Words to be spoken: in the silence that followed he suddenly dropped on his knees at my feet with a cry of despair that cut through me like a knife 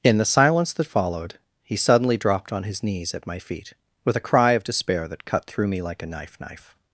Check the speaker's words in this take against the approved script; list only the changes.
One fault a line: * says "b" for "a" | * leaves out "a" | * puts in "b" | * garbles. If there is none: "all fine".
* puts in "knife"